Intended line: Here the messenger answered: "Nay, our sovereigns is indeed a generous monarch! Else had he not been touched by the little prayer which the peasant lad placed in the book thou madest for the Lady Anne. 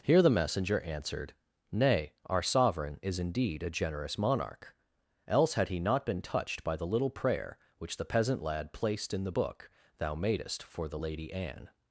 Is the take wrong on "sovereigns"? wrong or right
wrong